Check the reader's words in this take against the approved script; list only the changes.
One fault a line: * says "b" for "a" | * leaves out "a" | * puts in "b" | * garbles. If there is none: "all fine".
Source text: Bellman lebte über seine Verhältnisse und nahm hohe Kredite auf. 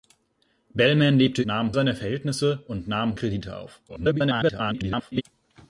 * says "nahm" for "über"
* leaves out "hohe"
* garbles